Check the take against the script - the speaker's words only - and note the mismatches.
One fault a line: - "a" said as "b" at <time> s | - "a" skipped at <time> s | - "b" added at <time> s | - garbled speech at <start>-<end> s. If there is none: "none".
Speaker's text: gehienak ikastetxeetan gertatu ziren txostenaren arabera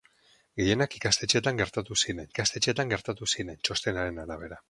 - "ikastetxeetan gertatu ziren" added at 2.3 s